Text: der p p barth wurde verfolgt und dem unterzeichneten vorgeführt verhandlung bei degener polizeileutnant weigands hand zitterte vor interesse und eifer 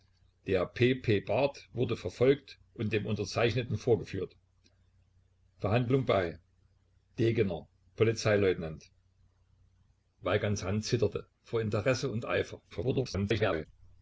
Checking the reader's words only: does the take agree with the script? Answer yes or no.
no